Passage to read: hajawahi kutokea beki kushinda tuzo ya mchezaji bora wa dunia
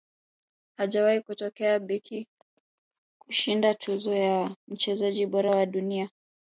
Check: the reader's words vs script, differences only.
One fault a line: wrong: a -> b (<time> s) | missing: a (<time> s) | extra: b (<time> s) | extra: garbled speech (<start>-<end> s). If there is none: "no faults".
no faults